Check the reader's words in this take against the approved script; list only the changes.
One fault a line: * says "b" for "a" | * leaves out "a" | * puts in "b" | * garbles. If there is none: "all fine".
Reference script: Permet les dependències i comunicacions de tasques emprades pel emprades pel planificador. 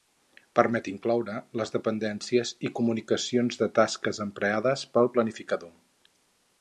* puts in "incloure"
* leaves out "emprades pel"